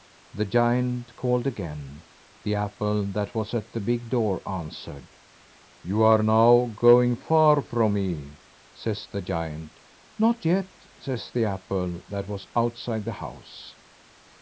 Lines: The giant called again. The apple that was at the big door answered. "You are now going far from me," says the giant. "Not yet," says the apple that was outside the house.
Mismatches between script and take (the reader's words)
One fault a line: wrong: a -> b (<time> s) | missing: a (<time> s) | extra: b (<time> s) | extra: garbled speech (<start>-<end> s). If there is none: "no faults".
no faults